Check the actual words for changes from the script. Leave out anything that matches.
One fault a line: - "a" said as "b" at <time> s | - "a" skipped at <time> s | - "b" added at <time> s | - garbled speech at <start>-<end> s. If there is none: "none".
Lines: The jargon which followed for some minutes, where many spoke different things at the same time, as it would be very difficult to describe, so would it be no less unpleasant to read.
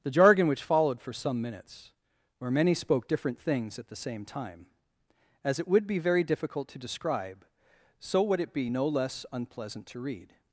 none